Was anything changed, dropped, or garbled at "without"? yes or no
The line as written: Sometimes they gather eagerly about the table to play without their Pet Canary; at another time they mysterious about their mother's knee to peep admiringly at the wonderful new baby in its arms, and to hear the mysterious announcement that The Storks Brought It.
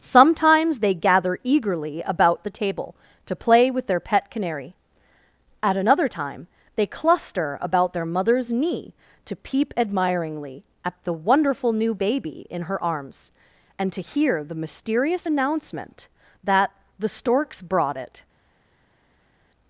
yes